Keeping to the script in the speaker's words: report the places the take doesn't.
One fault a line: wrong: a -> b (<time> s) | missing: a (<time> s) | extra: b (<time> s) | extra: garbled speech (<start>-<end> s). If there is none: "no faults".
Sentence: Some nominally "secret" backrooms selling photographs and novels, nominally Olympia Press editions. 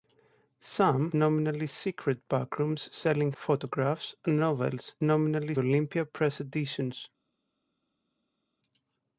no faults